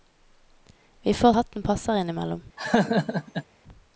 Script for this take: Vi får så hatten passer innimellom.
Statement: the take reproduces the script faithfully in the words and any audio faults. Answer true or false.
false